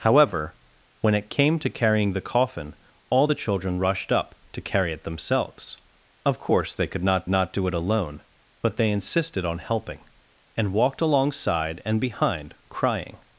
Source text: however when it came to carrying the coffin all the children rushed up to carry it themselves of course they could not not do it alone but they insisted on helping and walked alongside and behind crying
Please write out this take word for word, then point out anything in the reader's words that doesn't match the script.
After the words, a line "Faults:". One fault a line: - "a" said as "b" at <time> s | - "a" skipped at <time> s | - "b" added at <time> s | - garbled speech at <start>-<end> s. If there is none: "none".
however when it came to carrying the coffin all the children rushed up to carry it themselves of course they could not not do it alone but they insisted on helping and walked alongside and behind crying
Faults:
none